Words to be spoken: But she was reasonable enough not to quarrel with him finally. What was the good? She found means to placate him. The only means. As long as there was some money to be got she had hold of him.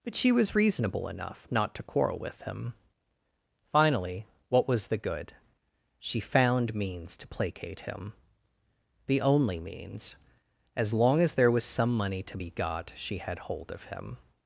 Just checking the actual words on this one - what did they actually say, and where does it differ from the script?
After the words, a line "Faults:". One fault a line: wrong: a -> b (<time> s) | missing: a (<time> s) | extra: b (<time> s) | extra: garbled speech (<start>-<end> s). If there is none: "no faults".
But she was reasonable enough not to quarrel with him finally. What was the good? She found means to placate him. The only means. As long as there was some money to be got she had hold of him.
Faults:
no faults